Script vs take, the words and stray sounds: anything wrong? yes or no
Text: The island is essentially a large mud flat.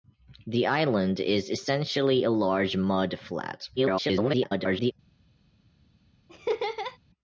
yes